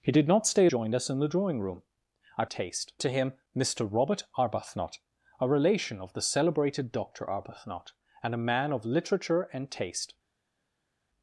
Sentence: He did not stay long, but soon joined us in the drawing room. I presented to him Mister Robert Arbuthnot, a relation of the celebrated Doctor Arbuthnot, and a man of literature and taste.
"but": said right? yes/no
no